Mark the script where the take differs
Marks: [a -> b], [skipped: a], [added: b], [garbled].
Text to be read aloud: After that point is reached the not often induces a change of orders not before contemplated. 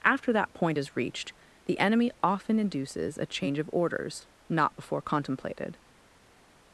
After that point is reached the [not -> enemy] often induces a change of orders not before contemplated.